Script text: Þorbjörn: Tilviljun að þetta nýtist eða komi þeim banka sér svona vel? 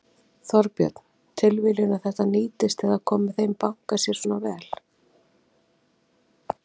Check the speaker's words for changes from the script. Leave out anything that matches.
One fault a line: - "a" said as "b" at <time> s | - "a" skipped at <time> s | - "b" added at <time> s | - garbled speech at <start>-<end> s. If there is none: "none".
none